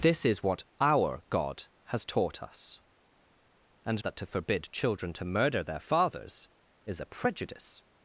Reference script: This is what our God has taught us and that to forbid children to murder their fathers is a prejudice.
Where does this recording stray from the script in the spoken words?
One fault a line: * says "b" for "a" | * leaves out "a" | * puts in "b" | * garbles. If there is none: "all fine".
all fine